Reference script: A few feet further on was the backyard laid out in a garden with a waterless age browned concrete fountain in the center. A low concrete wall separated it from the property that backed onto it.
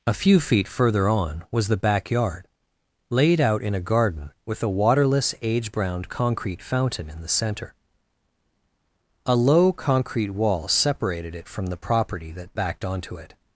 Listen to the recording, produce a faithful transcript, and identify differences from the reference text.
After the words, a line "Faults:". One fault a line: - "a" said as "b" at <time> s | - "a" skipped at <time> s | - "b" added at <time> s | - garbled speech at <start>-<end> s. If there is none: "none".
A few feet further on was the backyard laid out in a garden with a waterless age browned concrete fountain in the center. A low concrete wall separated it from the property that backed onto it.
Faults:
none